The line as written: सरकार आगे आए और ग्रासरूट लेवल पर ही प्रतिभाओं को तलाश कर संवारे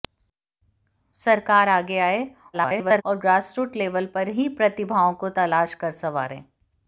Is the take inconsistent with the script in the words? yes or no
yes